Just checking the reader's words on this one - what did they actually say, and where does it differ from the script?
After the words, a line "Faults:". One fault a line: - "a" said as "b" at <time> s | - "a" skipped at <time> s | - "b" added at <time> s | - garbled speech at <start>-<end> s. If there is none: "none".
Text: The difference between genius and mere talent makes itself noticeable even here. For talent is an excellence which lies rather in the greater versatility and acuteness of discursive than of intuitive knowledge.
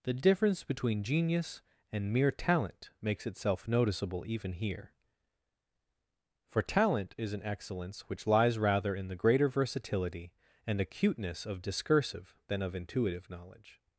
The difference between genius and mere talent makes itself noticeable even here. For talent is an excellence which lies rather in the greater versatility and acuteness of discursive than of intuitive knowledge.
Faults:
none